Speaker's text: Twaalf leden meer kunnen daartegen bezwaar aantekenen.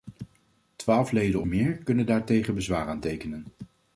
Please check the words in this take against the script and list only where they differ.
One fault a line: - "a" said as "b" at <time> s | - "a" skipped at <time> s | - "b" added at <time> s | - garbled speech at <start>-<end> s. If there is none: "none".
none